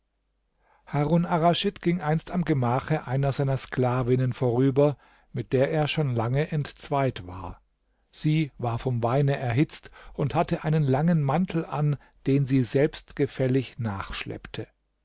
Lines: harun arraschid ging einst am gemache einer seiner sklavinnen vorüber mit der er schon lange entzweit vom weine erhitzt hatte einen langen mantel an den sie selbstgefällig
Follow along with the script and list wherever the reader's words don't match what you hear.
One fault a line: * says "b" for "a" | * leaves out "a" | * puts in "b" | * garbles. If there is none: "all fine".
* puts in "war sie war"
* puts in "und"